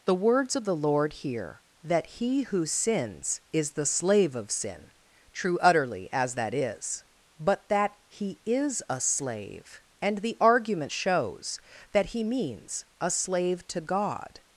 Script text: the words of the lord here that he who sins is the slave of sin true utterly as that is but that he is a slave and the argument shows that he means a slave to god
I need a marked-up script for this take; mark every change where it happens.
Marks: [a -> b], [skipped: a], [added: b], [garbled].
the words of the lord here that he who sins is the slave of sin true utterly as that is but that he is a slave and the argument shows that he means a slave to god